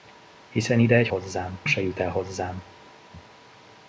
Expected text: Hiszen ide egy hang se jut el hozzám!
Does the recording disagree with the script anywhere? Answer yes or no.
yes